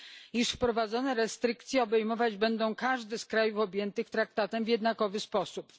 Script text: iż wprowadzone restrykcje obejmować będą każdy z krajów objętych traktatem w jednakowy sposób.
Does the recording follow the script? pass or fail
pass